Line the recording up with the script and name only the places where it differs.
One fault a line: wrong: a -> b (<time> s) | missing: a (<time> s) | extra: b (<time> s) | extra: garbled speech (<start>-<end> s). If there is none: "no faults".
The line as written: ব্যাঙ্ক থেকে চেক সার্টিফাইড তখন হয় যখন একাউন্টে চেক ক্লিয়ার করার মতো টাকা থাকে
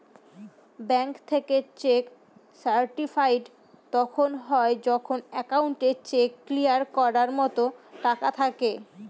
no faults